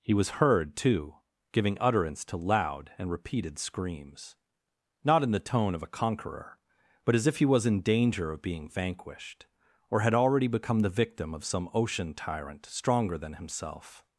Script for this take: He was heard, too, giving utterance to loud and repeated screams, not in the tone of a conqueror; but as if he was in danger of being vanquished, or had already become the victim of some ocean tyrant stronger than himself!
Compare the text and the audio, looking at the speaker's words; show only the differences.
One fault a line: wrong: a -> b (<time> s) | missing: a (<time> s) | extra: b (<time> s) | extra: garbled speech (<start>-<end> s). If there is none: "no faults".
no faults